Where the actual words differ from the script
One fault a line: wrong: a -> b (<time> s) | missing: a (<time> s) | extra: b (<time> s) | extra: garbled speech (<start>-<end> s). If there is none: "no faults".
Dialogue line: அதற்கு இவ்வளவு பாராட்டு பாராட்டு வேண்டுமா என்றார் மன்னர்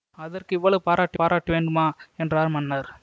no faults